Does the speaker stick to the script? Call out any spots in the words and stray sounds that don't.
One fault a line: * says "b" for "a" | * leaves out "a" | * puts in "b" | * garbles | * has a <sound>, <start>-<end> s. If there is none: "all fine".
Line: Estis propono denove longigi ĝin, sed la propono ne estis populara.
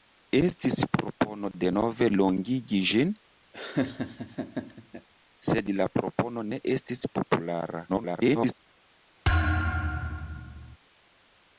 * has a laugh, 3.5-5.1 s
* garbles
* has a thud, 9.2-10.8 s